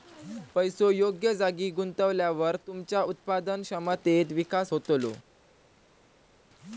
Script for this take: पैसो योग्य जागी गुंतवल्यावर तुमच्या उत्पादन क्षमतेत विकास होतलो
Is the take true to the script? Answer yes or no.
yes